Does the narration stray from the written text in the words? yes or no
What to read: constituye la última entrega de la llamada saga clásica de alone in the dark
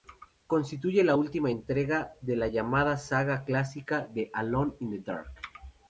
no